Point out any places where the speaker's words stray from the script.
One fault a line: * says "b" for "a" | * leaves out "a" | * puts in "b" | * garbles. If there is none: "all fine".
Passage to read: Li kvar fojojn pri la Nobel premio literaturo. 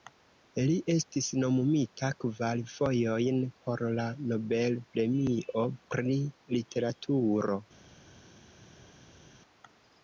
* puts in "estis nomumita"
* says "por" for "pri"
* puts in "pri"